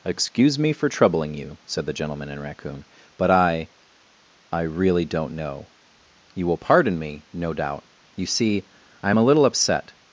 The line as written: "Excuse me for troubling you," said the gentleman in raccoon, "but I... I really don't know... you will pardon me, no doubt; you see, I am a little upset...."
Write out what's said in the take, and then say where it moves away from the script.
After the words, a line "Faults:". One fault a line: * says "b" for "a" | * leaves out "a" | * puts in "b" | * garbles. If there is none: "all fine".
"Excuse me for troubling you," said the gentleman in raccoon, "but I... I really don't know... you will pardon me, no doubt; you see, I am a little upset...."
Faults:
all fine